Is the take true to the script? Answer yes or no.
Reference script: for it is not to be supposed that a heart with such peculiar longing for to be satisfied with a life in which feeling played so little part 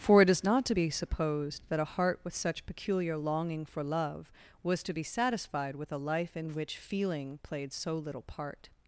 no